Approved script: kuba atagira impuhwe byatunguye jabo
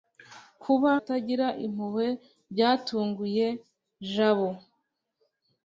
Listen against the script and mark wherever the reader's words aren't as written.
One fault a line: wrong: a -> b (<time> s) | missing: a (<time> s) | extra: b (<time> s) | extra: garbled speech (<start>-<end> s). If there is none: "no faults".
no faults